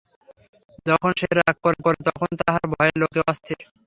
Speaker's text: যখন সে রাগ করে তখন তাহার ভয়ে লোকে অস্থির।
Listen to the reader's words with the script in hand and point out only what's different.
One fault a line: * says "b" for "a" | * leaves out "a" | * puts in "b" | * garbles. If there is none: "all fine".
* puts in "করে"